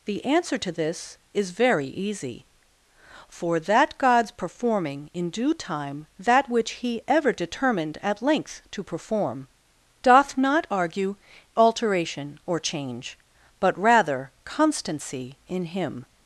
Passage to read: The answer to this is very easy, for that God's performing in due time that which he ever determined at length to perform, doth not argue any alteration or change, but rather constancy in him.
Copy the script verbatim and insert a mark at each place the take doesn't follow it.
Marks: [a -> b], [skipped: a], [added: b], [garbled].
The answer to this is very easy, for that God's performing in due time that which he ever determined at length to perform, doth not argue [skipped: any] alteration or change, but rather constancy in him.